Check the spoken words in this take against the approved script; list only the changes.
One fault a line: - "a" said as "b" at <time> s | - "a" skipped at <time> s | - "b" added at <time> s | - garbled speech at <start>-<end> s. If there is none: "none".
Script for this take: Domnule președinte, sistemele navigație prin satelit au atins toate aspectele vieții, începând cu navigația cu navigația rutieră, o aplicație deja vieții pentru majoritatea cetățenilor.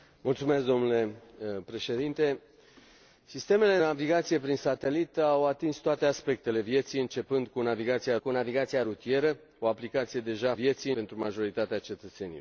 none